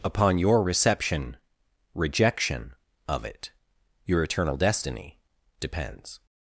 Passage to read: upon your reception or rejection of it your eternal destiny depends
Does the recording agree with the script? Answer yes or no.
no